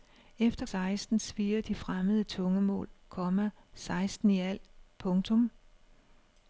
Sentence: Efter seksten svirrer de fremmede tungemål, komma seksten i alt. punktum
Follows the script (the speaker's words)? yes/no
yes